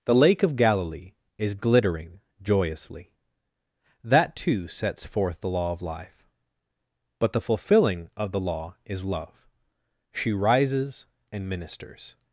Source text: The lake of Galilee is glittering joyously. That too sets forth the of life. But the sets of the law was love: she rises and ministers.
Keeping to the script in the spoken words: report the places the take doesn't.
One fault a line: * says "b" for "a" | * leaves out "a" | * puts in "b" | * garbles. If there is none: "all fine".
* puts in "law"
* says "fulfilling" for "sets"
* says "is" for "was"